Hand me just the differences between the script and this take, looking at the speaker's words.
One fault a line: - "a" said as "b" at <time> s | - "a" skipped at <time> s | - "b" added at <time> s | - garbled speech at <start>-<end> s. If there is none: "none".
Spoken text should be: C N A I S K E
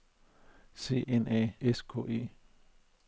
none